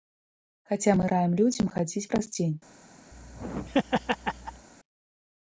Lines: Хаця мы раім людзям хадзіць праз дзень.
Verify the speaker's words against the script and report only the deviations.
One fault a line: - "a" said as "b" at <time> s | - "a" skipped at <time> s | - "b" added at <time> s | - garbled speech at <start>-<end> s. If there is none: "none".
none